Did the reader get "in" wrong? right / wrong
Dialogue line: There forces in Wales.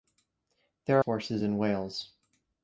right